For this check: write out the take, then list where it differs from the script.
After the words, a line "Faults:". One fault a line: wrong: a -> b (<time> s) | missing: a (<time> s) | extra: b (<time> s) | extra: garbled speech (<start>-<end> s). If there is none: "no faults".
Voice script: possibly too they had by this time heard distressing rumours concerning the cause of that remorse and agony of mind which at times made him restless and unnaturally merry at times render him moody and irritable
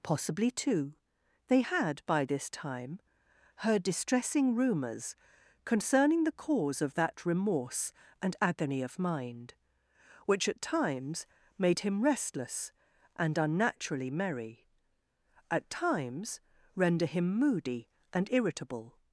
possibly too they had by this time heard distressing rumours concerning the cause of that remorse and agony of mind which at times made him restless and unnaturally merry at times render him moody and irritable
Faults:
no faults